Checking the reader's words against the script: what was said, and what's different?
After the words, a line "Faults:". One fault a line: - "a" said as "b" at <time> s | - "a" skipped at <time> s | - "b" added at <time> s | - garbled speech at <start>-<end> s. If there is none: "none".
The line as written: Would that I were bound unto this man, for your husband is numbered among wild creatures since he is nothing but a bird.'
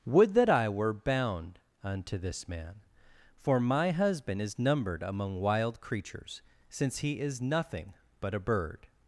Would that I were bound unto this man, for my husband is numbered among wild creatures since he is nothing but a bird.'
Faults:
- "your" said as "my" at 3.6 s